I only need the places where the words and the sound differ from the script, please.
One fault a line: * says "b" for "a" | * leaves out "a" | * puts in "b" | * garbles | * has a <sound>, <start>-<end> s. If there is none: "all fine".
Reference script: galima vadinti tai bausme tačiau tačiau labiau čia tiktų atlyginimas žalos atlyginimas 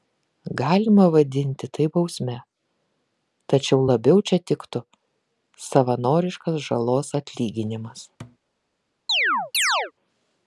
* leaves out "tačiau"
* says "savanoriškas" for "atlyginimas"
* has a thud, 8.2-8.4 s
* has a chirp, 9.1-9.9 s